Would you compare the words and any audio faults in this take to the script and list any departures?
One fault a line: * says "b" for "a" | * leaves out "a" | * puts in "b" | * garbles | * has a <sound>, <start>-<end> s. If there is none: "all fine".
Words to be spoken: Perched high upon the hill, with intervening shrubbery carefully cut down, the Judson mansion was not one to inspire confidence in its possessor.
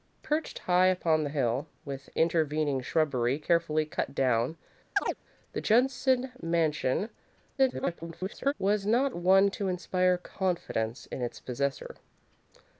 * has a chirp, 5.0-5.2 s
* garbles